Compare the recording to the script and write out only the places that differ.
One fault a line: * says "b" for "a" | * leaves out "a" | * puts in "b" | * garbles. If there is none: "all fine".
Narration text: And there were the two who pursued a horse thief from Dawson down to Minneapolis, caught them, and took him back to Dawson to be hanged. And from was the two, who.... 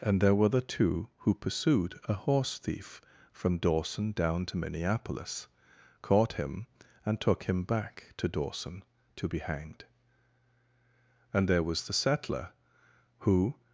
* says "him" for "them"
* says "there" for "from"
* says "settler" for "two"